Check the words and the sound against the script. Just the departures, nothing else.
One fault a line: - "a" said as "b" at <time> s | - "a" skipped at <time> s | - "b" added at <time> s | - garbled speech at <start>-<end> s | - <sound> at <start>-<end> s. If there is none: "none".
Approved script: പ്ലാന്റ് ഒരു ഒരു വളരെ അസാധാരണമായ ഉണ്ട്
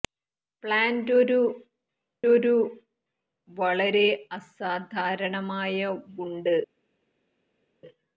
none